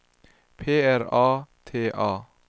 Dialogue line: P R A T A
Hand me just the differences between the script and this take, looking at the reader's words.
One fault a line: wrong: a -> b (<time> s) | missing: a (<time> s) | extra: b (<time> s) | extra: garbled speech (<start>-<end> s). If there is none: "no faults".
no faults